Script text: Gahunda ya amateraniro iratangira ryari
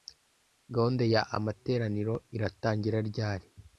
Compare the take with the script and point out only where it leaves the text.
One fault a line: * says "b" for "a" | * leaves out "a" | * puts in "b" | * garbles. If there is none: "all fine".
all fine